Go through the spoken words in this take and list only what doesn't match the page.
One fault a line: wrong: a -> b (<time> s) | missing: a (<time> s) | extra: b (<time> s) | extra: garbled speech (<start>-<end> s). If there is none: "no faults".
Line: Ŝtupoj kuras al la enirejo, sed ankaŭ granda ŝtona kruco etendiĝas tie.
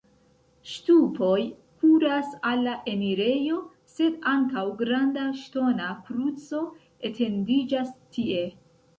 no faults